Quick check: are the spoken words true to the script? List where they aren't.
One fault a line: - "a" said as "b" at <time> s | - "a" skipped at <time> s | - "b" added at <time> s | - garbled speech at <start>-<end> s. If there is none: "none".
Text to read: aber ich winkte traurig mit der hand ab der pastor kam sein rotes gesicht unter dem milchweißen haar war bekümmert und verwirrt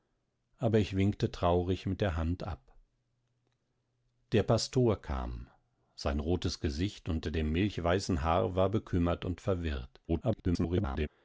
- garbled speech at 10.1-11.1 s